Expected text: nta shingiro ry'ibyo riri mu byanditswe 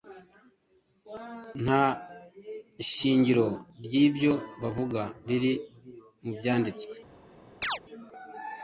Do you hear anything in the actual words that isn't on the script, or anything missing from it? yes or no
yes